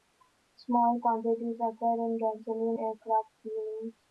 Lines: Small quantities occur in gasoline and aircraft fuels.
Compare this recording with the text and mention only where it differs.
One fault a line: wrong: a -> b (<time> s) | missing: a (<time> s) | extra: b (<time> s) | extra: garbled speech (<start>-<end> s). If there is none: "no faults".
missing: and (2.8 s)